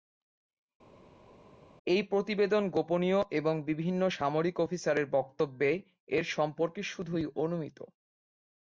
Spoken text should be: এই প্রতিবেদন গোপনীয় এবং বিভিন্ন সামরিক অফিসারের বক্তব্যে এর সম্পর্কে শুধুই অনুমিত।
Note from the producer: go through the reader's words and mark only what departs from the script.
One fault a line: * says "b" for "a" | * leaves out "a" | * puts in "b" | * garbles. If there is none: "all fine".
all fine